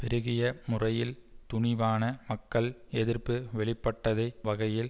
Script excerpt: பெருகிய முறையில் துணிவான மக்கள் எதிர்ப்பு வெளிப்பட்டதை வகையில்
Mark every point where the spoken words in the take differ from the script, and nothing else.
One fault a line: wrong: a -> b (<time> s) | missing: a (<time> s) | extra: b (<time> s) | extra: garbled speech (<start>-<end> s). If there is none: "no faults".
no faults